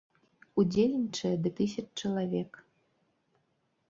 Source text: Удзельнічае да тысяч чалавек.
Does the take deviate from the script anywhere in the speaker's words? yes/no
no